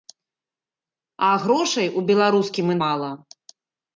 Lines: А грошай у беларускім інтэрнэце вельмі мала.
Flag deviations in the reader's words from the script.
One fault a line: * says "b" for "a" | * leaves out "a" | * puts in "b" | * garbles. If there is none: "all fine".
* leaves out "інтэрнэце вельмі"